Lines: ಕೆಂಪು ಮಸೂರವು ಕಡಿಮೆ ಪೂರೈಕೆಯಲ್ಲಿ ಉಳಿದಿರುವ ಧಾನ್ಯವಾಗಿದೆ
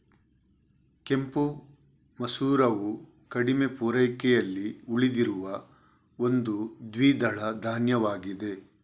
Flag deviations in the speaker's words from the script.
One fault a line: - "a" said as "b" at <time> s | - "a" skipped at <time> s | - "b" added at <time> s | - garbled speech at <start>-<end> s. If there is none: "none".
- "ಒಂದು ದ್ವಿದಳ" added at 6.2 s